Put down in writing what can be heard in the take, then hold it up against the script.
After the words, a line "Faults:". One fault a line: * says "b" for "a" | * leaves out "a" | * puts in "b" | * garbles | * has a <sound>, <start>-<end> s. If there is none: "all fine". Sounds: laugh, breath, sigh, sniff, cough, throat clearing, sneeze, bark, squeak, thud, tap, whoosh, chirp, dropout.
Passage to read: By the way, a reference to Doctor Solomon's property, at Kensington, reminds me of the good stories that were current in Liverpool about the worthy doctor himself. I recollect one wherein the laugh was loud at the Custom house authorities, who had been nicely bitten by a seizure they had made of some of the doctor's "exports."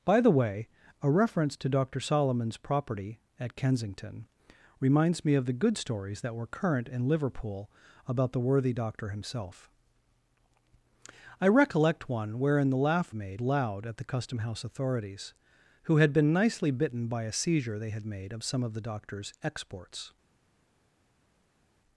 By the way, a reference to Doctor Solomon's property, at Kensington, reminds me of the good stories that were current in Liverpool about the worthy doctor himself. I recollect one wherein the laugh made loud at the Custom house authorities, who had been nicely bitten by a seizure they had made of some of the doctor's "exports."
Faults:
* says "made" for "was"